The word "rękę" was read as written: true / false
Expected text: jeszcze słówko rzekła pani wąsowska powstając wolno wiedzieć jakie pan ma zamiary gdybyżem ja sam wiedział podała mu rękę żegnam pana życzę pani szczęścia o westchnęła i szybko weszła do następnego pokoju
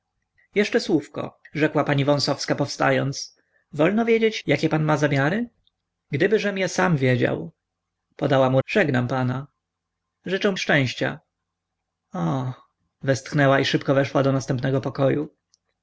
false